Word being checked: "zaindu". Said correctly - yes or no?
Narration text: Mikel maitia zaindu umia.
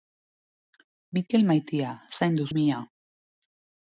yes